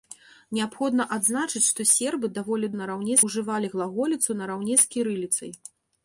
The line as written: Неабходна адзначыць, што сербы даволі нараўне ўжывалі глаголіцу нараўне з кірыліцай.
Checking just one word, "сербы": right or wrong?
right